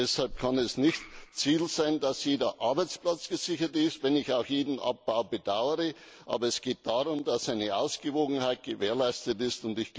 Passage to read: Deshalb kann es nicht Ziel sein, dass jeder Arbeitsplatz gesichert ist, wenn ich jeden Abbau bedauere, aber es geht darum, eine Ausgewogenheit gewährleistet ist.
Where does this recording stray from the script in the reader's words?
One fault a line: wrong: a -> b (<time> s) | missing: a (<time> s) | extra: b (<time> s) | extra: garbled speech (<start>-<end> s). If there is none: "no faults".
extra: auch (4.3 s)
extra: dass (7.2 s)